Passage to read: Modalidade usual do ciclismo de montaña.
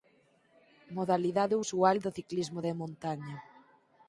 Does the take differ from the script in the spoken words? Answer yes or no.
no